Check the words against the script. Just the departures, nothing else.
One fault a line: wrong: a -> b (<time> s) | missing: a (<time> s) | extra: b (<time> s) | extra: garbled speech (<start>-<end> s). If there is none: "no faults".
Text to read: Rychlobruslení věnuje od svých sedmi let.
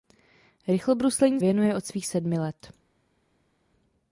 no faults